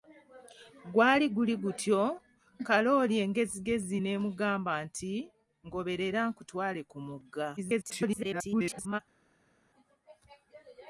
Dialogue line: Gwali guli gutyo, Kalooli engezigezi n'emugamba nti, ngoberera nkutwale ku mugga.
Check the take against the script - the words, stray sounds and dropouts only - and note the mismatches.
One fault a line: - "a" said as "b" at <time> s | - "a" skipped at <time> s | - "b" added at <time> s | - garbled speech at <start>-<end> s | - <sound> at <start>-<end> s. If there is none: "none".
- garbled speech at 7.6-9.0 s